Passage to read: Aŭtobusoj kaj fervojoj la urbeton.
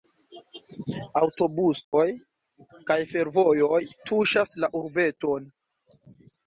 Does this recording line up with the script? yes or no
no